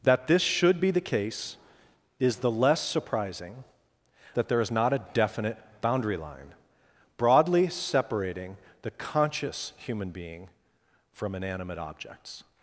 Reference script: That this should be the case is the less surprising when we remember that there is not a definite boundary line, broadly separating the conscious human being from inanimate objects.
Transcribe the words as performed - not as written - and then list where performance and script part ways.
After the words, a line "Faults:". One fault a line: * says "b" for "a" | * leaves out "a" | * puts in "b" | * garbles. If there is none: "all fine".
That this should be the case is the less surprising that there is not a definite boundary line, broadly separating the conscious human being from inanimate objects.
Faults:
* leaves out "when we remember"